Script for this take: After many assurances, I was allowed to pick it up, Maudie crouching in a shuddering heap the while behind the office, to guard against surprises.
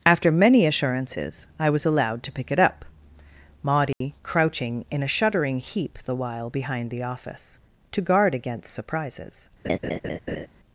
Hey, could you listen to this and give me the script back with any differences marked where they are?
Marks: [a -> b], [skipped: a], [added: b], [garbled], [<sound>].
After many assurances, I was allowed to pick it up, Maudie [dropout] crouching in a shuddering heap the while behind the office, to guard against surprises. [laugh]